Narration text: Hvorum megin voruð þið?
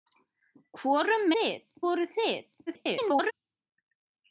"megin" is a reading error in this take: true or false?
true